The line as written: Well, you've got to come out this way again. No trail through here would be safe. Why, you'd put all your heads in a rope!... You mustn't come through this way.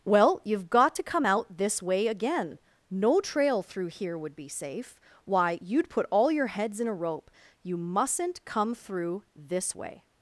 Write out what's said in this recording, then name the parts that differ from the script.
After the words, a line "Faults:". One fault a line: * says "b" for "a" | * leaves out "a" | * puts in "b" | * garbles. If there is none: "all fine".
Well, you've got to come out this way again. No trail through here would be safe. Why, you'd put all your heads in a rope!... You mustn't come through this way.
Faults:
all fine